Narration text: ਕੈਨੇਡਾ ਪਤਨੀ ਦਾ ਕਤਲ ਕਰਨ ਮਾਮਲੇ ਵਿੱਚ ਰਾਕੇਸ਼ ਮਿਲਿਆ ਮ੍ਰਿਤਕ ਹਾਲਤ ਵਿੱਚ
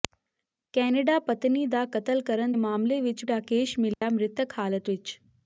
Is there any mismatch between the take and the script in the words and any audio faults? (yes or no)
yes